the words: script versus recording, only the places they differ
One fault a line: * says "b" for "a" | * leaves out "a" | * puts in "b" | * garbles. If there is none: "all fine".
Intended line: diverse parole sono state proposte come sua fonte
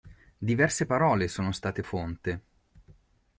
* leaves out "proposte come sua"